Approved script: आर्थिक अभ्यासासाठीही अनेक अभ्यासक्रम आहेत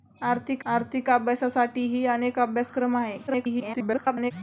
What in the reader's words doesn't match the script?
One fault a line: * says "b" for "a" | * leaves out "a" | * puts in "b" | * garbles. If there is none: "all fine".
* puts in "आर्थिक"
* garbles